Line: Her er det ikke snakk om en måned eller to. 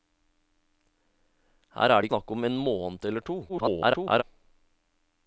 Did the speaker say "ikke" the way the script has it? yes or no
no